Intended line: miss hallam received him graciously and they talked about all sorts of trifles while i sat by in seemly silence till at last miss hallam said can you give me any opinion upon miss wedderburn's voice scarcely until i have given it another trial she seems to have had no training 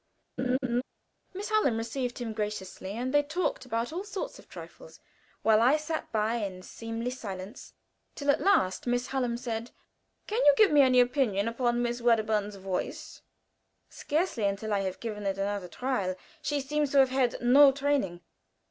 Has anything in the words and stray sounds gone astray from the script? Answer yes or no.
yes